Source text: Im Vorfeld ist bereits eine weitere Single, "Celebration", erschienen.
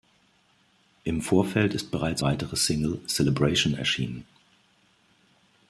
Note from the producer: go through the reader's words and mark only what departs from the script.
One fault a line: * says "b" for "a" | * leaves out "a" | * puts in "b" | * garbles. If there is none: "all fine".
* leaves out "eine"